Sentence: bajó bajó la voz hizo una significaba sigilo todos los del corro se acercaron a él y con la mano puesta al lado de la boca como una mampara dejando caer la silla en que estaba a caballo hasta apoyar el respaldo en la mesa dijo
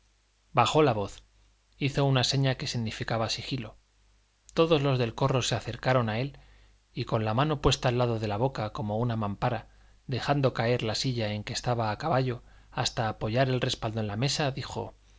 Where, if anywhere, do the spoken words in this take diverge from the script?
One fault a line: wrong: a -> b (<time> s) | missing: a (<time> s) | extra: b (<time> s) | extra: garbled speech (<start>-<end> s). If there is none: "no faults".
missing: bajó (0.8 s)
extra: seña que (2.2 s)